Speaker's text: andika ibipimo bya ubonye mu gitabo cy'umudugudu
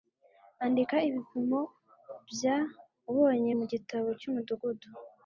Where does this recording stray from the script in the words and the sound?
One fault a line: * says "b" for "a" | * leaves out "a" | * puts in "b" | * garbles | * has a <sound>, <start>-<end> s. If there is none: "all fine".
all fine